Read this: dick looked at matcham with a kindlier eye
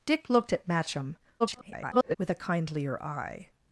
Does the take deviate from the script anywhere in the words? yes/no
yes